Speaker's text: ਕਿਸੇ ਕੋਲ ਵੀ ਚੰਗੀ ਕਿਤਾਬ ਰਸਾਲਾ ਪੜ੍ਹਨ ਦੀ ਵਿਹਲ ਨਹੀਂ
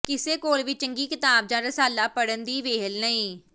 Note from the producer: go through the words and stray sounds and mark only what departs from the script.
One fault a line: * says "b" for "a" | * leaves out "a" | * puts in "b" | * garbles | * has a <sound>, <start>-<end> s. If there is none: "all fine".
* puts in "ਜਾਂ"